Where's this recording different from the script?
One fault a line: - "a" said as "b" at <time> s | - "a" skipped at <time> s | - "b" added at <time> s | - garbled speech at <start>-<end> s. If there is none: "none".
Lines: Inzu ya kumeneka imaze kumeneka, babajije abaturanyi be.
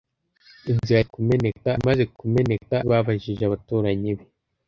none